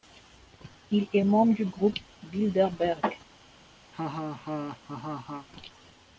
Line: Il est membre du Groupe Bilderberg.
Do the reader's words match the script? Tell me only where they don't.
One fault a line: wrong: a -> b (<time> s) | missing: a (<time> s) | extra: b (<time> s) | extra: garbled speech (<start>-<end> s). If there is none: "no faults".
no faults